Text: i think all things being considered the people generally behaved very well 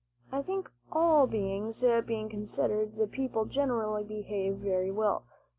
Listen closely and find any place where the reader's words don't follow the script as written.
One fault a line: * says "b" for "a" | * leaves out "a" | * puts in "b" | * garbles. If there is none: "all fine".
all fine